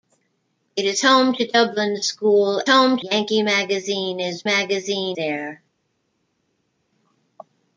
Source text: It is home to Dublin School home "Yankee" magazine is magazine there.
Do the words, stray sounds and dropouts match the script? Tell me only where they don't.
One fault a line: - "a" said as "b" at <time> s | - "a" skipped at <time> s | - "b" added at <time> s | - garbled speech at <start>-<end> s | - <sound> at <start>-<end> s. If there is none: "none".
none